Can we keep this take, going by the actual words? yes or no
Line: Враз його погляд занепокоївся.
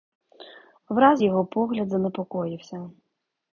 yes